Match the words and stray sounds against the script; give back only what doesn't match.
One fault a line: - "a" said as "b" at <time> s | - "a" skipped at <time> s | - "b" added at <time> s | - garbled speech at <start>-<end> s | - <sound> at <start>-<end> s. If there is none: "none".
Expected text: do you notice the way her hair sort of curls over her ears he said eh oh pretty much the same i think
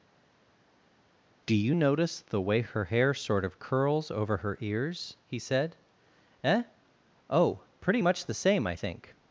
none